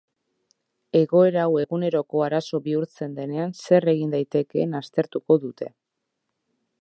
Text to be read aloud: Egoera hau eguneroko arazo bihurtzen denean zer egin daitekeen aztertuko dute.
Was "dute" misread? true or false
false